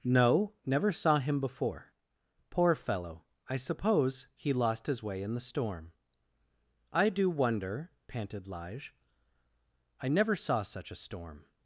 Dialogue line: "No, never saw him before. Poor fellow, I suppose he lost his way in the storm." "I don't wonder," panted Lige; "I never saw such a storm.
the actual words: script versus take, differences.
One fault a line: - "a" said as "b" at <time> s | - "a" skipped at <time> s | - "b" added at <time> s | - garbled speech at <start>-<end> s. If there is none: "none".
- "don't" said as "do" at 7.1 s